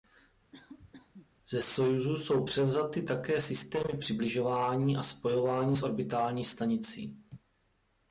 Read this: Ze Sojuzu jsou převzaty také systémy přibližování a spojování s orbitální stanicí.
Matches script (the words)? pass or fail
pass